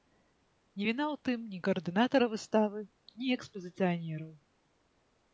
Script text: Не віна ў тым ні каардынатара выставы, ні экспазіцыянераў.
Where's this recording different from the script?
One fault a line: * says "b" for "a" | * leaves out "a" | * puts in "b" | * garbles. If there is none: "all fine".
all fine